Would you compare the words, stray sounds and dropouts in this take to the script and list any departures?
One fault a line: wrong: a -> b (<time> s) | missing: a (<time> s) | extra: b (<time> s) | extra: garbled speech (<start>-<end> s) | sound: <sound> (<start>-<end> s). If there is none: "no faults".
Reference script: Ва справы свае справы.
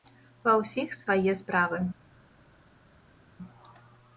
wrong: справы -> ўсіх (0.6 s)